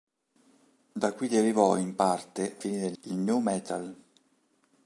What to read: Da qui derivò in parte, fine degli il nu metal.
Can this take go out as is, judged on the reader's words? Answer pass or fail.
pass